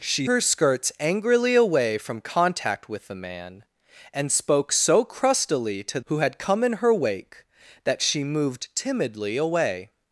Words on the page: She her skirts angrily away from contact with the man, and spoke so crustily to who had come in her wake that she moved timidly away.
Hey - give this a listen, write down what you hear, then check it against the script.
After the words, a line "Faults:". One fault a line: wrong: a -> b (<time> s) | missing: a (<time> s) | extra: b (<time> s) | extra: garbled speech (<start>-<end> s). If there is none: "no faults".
She her skirts angrily away from contact with the man, and spoke so crustily to who had come in her wake that she moved timidly away.
Faults:
no faults